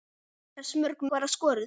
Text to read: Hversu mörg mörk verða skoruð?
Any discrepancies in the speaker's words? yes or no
yes